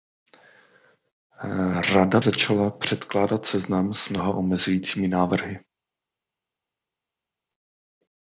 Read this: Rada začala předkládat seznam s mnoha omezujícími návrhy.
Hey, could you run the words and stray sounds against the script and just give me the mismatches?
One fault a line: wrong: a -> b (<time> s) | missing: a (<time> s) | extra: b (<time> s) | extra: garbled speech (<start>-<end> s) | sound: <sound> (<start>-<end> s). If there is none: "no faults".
no faults